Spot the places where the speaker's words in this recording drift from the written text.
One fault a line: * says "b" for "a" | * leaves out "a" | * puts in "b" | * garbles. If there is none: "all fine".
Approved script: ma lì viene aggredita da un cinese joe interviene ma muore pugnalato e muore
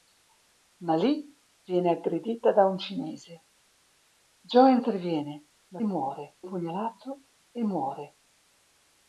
all fine